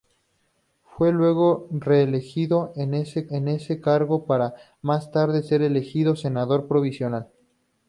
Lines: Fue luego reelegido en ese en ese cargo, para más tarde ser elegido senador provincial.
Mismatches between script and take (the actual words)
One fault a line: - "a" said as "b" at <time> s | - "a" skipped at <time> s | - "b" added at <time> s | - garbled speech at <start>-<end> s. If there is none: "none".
none